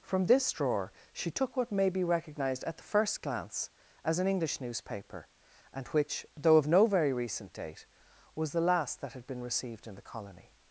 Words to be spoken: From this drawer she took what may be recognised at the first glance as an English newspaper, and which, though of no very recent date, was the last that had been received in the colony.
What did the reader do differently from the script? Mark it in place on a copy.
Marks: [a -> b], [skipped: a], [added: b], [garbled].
From this drawer she took what may be recognised at the first glance as an English newspaper, and which, though of no very recent date, was the last that had been received in the colony.